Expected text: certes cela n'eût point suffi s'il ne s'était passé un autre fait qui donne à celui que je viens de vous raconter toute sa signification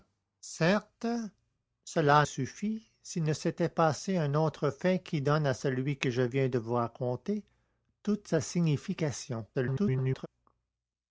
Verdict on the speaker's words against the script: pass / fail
fail